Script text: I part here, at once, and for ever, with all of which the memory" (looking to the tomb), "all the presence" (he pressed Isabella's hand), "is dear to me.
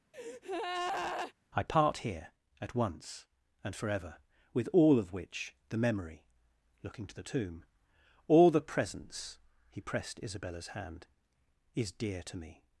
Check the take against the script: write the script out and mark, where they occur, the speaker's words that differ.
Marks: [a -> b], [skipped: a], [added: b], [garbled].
I part here, at once, and for ever, with all of which the memory" (looking to the tomb), "all the presence" (he pressed Isabella's hand), "is dear to me.